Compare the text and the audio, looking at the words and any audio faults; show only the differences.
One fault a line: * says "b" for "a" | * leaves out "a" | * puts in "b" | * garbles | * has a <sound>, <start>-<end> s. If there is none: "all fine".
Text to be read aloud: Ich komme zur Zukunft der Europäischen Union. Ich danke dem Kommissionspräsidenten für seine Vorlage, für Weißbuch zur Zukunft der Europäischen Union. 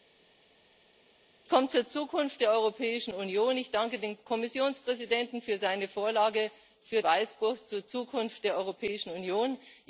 all fine